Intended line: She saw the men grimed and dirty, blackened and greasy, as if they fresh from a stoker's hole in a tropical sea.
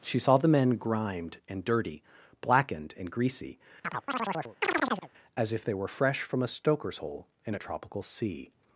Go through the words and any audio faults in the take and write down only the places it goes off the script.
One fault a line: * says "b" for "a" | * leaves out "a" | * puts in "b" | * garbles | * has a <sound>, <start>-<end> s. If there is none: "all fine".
* has a chirp, 3.8-5.1 s
* puts in "were"